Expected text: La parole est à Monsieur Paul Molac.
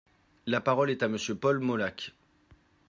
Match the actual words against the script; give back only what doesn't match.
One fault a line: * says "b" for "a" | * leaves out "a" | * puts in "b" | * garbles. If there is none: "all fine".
all fine